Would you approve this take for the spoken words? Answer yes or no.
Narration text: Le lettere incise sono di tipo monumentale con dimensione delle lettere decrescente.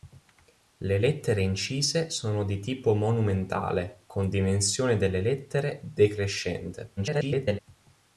no